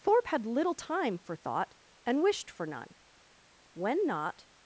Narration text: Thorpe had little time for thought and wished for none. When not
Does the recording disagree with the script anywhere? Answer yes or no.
no